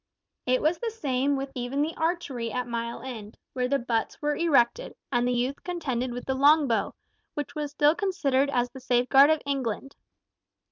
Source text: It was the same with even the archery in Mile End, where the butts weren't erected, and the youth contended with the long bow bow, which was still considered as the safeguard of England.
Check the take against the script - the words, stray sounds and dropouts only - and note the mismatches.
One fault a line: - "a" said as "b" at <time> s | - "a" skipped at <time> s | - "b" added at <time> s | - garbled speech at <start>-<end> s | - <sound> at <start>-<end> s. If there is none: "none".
- "in" said as "at" at 2.5 s
- "weren't" said as "were" at 4.2 s
- "bow" skipped at 6.9 s